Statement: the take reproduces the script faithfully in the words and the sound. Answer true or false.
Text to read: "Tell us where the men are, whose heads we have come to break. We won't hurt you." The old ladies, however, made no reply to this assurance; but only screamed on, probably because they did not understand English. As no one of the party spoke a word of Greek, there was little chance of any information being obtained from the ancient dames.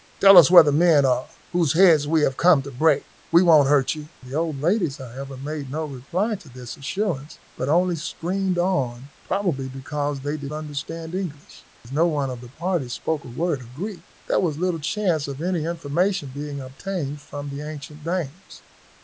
false